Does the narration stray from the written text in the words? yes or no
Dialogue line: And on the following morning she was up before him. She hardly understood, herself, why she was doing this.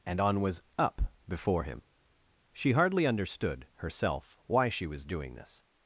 yes